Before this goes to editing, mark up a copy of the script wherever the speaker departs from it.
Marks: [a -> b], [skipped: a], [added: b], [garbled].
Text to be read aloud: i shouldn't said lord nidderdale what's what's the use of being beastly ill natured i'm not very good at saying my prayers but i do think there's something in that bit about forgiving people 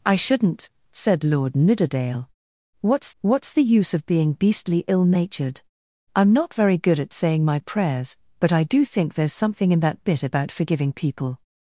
i shouldn't said lord nidderdale what's what's the use of being beastly ill natured i'm not very good at saying my prayers but i do think there's something in that bit about forgiving people